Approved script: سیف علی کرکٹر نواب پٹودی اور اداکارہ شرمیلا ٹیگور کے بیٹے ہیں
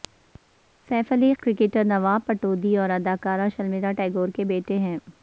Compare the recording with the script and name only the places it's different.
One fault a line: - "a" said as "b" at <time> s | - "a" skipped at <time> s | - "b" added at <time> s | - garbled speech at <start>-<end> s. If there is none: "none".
none